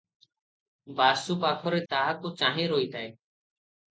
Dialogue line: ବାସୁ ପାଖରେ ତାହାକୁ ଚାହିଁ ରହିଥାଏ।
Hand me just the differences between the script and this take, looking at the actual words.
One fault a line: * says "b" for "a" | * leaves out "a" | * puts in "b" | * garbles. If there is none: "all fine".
all fine